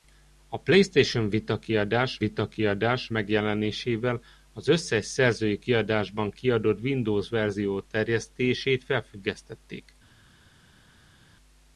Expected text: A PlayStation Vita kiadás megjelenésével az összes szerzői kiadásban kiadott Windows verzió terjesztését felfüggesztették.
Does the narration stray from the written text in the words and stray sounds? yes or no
yes